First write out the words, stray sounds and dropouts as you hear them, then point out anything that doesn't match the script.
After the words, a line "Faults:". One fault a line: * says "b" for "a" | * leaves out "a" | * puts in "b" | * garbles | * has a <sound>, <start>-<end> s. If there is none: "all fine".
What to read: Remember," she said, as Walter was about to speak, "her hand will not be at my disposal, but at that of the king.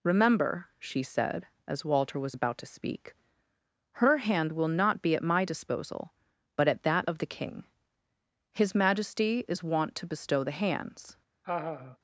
Remember," she said, as Walter was about to speak, "her hand will not be at my disposal, but at that of the king. His majesty is wont to bestow the hands
Faults:
* puts in "His majesty is wont to bestow the hands"
* has a laugh, 11.4-12.0 s